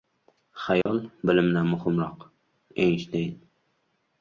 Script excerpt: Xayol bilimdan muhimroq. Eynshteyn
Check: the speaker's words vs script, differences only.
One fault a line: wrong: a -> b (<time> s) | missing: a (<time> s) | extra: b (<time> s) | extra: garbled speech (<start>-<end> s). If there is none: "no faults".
no faults